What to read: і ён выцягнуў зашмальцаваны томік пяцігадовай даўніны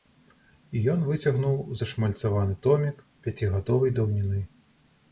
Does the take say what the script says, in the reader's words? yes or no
yes